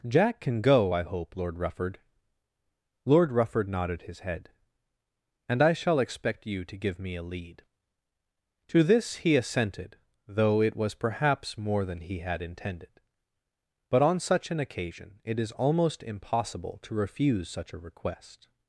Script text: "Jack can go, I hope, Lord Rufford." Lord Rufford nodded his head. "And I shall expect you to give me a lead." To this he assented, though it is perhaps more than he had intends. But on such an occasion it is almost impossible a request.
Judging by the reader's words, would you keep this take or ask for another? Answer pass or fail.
fail